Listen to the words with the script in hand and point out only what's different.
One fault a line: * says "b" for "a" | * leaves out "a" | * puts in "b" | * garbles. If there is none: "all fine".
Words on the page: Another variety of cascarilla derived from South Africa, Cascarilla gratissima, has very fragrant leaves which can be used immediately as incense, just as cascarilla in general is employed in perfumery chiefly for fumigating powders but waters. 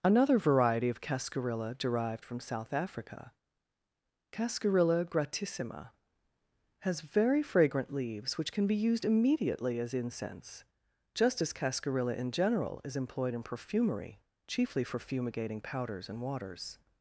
* says "and" for "but"